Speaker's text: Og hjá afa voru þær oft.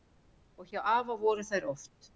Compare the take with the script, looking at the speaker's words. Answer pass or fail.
pass